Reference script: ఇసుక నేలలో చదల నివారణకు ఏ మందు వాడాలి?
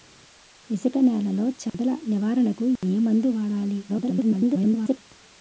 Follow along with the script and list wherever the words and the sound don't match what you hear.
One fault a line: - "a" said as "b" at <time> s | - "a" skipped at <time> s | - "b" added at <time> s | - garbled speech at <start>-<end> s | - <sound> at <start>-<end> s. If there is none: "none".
- dropout at 1.7-1.7 s
- dropout at 2.8-2.8 s
- garbled speech at 3.9-5.0 s